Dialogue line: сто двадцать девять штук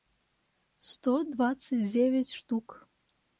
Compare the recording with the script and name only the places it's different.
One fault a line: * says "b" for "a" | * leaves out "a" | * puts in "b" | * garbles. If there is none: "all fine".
all fine